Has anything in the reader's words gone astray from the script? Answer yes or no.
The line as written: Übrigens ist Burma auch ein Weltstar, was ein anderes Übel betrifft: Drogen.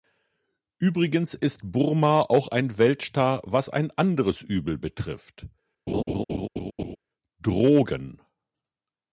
no